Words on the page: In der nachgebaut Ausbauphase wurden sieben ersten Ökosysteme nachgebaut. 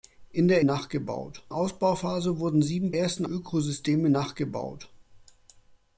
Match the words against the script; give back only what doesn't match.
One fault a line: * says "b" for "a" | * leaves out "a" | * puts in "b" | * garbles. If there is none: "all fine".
all fine